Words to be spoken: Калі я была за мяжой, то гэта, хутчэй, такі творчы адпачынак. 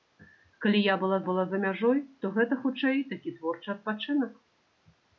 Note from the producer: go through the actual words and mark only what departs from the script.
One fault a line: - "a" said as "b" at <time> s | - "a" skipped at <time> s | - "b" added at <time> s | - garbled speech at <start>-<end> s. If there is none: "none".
- "была" added at 1.3 s